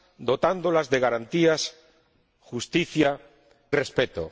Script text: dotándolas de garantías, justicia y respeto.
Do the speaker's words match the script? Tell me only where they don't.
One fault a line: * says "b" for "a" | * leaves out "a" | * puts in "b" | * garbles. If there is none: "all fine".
* leaves out "y"